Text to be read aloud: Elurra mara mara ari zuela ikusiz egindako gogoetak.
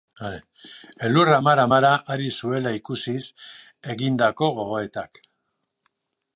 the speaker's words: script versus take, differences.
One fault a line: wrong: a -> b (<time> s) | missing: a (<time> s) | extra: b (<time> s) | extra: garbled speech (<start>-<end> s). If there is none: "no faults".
no faults